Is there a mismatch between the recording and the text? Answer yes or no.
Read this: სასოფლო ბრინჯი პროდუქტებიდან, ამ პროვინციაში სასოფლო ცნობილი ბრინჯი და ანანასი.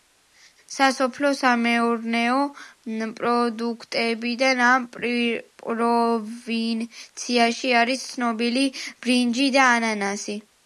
yes